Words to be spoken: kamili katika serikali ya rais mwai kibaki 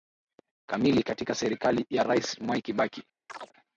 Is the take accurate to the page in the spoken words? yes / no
yes